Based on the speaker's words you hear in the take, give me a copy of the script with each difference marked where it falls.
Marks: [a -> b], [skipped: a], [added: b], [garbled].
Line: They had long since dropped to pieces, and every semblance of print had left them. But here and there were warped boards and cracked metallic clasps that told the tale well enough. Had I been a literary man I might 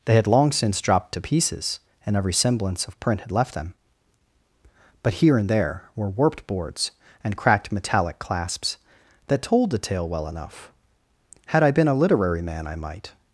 They had long since dropped to pieces, and every semblance of print had left them. But here and there were warped boards and cracked metallic clasps that told the tale well enough. Had I been a literary man I might